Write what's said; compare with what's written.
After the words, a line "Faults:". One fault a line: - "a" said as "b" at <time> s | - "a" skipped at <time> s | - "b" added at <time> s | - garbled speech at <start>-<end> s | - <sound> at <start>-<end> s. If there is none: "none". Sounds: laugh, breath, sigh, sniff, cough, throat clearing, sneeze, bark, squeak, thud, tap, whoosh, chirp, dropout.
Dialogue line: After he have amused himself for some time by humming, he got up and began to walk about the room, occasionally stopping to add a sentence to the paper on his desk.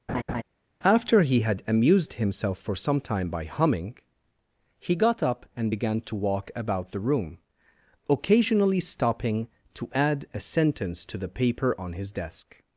After he had amused himself for some time by humming, he got up and began to walk about the room, occasionally stopping to add a sentence to the paper on his desk.
Faults:
- laugh at 0.1-0.4 s
- "have" said as "had" at 1.4 s